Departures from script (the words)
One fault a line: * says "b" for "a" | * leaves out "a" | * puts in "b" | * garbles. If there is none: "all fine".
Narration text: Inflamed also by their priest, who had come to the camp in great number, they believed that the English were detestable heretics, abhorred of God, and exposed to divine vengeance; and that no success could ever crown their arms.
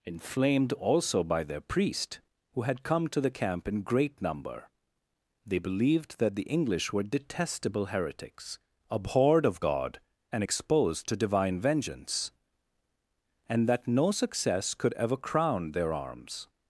all fine